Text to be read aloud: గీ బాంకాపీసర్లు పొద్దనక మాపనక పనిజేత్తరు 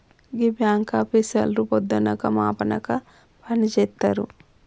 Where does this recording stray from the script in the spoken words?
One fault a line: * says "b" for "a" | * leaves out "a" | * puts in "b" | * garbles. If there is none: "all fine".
all fine